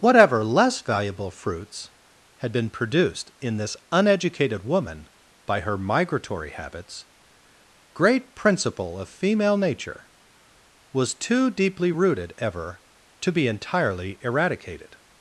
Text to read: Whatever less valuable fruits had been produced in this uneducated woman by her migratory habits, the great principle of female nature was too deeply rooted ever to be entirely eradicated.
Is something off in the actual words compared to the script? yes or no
yes